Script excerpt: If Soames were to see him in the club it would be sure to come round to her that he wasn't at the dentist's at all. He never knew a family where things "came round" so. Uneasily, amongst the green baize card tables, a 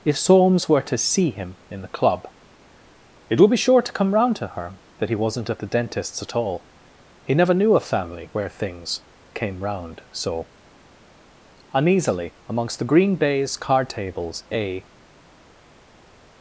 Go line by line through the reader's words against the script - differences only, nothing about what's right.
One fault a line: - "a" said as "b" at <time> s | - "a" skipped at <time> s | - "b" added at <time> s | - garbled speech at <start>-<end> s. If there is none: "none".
none